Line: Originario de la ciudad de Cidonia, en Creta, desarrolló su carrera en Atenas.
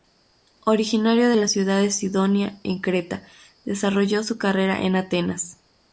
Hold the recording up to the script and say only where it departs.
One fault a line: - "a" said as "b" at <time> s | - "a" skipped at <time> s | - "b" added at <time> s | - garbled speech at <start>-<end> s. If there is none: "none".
none